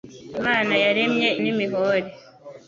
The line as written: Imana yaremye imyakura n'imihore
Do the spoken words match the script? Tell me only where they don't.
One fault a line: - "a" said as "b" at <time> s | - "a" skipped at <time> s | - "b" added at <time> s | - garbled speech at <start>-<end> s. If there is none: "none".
- "imyakura" skipped at 1.3 s